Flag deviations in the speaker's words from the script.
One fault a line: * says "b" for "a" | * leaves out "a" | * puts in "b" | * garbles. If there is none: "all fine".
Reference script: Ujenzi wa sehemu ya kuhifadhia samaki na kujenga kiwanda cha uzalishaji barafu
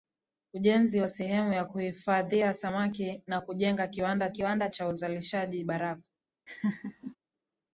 * puts in "kiwanda"